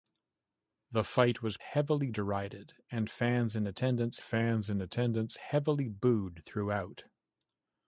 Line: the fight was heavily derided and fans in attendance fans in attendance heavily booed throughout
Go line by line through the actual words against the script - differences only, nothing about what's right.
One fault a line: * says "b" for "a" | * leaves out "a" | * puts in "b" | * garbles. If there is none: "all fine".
all fine